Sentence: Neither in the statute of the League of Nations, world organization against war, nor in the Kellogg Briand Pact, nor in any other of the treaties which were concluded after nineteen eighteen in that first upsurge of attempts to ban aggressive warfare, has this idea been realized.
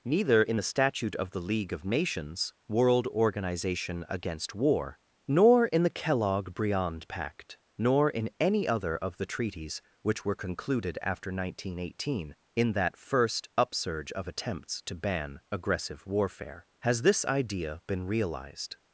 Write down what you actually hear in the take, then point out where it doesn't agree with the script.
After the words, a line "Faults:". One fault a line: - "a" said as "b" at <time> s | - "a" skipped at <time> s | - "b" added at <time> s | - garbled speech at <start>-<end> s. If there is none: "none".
Neither in the statute of the League of Nations, world organization against war, nor in the Kellogg Briand Pact, nor in any other of the treaties which were concluded after nineteen eighteen in that first upsurge of attempts to ban aggressive warfare, has this idea been realized.
Faults:
none